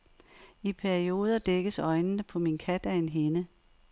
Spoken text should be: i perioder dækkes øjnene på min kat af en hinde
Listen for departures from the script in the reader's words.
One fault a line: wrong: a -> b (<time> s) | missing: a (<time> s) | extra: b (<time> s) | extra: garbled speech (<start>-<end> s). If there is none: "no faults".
no faults